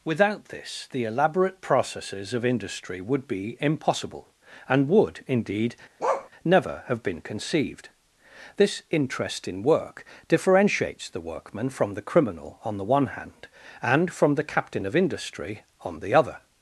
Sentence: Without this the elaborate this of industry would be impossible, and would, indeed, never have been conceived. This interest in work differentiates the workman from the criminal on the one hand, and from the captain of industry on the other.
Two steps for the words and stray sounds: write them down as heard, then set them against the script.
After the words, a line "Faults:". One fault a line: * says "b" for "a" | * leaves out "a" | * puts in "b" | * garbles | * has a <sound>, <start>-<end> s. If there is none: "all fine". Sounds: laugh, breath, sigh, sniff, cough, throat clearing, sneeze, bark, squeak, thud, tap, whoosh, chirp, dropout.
Without this the elaborate processes of industry would be impossible, and would, indeed, never have been conceived. This interest in work differentiates the workman from the criminal on the one hand, and from the captain of industry on the other.
Faults:
* says "processes" for "this"
* has a bark, 6.0-6.3 s